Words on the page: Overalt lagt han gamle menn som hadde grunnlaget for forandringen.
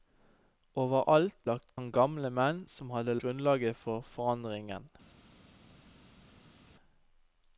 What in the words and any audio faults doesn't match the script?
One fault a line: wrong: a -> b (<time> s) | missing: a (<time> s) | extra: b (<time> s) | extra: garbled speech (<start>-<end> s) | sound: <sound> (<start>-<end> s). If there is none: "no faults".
no faults